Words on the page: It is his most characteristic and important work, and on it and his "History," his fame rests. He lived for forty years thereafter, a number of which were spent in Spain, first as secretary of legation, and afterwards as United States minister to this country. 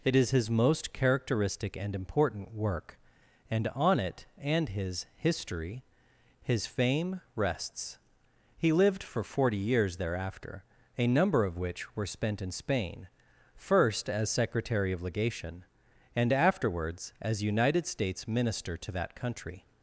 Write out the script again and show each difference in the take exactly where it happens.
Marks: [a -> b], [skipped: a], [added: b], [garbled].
It is his most characteristic and important work, and on it and his "History," his fame rests. He lived for forty years thereafter, a number of which were spent in Spain, first as secretary of legation, and afterwards as United States minister to [this -> that] country.